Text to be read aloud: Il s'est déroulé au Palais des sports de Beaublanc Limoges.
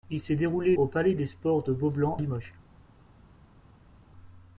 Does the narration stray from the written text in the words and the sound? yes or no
no